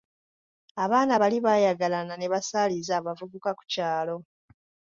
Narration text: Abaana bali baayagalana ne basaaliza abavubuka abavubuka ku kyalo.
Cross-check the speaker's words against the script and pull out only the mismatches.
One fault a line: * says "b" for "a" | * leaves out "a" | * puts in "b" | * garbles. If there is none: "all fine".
* leaves out "abavubuka"